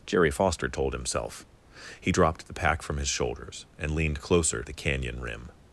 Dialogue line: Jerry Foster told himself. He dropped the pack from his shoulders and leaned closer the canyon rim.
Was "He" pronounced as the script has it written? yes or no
yes